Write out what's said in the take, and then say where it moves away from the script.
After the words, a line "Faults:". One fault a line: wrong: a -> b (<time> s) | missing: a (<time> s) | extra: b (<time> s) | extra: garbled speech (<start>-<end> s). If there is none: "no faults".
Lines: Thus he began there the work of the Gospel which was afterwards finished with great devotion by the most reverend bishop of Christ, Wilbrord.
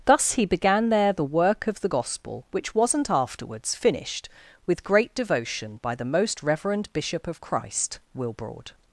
Thus he began there the work of the Gospel which wasn't afterwards finished with great devotion by the most reverend bishop of Christ, Wilbrord.
Faults:
wrong: was -> wasn't (2.7 s)